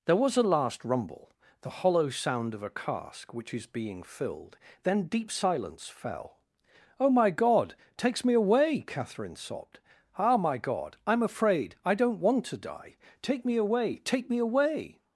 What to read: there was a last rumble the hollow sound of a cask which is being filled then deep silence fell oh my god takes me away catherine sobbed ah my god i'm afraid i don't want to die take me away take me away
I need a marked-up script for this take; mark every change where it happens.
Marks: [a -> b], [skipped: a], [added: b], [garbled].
there was a last rumble the hollow sound of a cask which is being filled then deep silence fell oh my god takes me away catherine sobbed ah my god i'm afraid i don't want to die take me away take me away